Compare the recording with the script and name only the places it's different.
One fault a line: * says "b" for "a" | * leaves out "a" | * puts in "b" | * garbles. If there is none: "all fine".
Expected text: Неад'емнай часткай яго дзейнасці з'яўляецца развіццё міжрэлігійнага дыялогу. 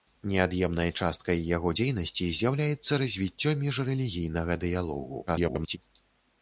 * garbles